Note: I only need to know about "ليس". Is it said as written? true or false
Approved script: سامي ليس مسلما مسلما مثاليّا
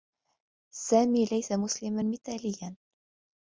true